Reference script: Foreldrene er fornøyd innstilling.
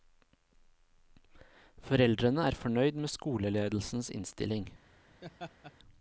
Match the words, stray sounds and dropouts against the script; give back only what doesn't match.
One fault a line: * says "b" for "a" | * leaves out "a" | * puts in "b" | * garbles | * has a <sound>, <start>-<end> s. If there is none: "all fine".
* puts in "med skoleledelsens"
* has a laugh, 5.2-5.7 s